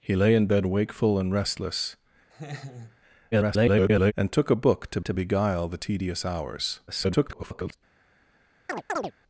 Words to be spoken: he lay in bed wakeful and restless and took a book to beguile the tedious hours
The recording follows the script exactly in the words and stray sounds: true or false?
false